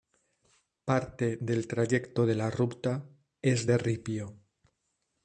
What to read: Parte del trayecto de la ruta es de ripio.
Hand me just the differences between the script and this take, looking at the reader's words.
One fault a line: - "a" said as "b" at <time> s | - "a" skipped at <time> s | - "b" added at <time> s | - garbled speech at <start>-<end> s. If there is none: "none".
none